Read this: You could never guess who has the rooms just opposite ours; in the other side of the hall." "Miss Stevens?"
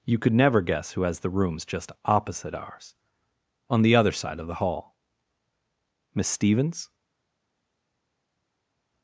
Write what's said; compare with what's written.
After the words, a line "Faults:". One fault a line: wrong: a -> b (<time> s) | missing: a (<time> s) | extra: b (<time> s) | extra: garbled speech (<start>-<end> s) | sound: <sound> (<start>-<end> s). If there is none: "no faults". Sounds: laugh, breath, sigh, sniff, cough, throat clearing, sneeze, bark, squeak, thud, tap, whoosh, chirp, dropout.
You could never guess who has the rooms just opposite ours; on the other side of the hall." "Miss Stevens?"
Faults:
wrong: in -> on (3.7 s)